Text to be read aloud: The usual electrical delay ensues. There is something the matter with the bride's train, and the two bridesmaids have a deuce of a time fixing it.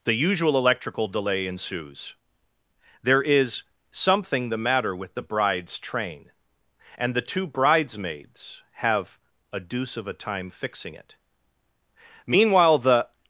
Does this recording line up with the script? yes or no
no